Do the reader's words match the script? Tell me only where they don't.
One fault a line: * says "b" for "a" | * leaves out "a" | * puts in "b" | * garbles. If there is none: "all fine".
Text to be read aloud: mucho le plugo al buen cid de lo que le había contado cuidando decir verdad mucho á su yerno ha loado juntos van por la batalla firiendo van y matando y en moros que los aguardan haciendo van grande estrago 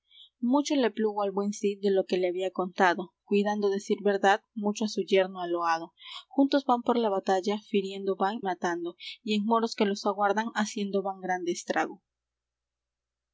* leaves out "y"